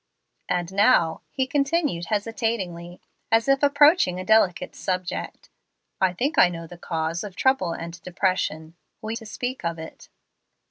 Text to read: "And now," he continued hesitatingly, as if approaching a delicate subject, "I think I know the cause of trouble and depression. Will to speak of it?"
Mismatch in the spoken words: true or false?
false